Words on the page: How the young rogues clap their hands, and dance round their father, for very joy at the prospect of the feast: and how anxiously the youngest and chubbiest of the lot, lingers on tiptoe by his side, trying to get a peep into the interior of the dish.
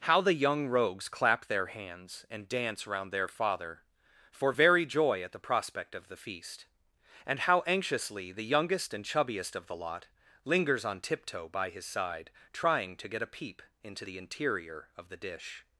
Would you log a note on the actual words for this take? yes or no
no